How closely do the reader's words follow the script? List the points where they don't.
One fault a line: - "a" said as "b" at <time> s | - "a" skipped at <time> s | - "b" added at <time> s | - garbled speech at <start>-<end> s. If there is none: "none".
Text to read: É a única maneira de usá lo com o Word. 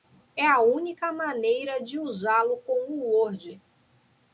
none